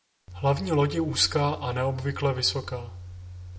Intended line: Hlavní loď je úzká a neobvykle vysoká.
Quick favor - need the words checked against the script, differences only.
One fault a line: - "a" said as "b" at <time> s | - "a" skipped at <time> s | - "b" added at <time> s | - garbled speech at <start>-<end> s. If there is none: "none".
none